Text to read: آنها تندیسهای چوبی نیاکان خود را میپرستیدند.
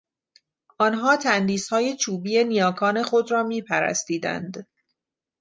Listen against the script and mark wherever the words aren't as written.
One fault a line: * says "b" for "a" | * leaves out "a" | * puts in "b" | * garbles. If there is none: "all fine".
all fine